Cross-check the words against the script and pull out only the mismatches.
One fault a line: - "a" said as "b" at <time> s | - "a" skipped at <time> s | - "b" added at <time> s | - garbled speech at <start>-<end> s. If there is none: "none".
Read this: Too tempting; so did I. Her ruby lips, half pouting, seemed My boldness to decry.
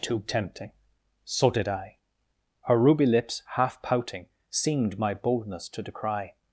none